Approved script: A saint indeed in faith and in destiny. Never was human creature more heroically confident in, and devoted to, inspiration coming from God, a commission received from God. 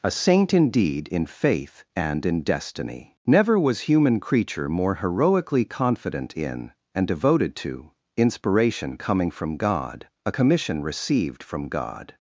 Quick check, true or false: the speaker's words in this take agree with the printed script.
true